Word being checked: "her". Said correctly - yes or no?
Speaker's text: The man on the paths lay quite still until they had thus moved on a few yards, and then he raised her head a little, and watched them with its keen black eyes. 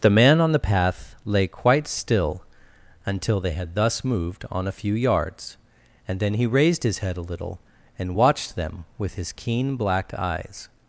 no